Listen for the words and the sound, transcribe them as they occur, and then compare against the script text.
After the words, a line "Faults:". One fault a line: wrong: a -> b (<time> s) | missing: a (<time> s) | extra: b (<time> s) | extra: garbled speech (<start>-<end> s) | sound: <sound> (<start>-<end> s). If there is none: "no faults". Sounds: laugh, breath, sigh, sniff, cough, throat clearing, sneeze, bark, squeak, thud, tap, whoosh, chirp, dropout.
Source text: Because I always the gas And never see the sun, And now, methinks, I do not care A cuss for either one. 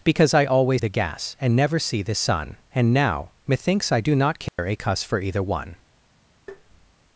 Because I always the gas And never see the sun, And now, methinks, I do not care A cuss for either one.
Faults:
sound: dropout (4.5-4.6 s)
sound: tap (6.5-6.9 s)